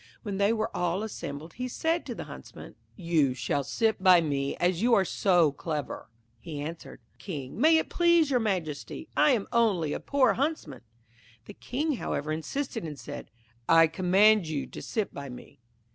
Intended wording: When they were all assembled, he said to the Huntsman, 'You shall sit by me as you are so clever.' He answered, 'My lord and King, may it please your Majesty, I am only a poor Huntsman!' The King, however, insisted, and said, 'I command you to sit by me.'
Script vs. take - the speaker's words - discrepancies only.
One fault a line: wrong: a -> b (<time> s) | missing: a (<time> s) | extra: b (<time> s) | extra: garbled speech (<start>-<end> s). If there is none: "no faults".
missing: My lord and (7.0 s)